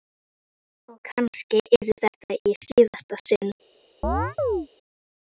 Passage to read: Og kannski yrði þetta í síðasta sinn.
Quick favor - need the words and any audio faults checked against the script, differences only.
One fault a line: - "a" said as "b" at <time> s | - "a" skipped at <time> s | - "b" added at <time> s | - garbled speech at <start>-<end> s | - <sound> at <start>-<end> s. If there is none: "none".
- chirp at 4.0-4.7 s